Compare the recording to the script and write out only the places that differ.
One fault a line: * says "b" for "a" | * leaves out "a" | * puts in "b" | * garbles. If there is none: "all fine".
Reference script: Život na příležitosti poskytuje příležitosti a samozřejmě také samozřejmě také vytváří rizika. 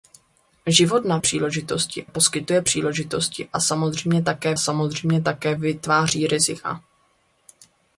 all fine